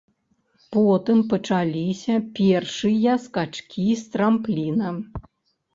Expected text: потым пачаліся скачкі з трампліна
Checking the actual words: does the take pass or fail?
fail